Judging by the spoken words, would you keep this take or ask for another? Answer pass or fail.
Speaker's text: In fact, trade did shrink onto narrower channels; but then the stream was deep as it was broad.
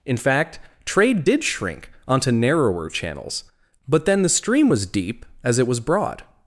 pass